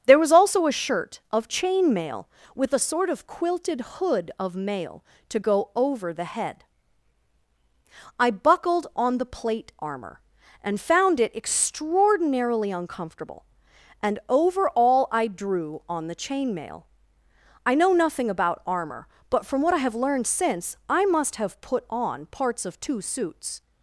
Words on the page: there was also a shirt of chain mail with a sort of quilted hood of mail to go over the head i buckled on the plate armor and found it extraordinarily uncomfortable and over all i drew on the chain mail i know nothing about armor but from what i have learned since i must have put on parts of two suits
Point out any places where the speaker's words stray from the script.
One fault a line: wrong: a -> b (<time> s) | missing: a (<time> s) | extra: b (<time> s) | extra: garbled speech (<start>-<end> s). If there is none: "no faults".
no faults